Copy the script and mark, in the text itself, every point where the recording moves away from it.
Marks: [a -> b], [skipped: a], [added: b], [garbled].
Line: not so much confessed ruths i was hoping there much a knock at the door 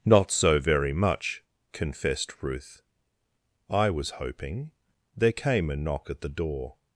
not so [added: very] much confessed [ruths -> ruth] i was hoping there [much -> came] a knock at the door